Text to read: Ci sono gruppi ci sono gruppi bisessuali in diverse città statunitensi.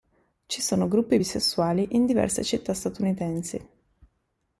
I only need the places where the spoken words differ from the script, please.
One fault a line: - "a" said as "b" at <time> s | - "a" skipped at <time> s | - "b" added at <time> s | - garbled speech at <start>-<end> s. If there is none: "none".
- "ci sono gruppi" skipped at 1.2 s